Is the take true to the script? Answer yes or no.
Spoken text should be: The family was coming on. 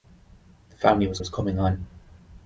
no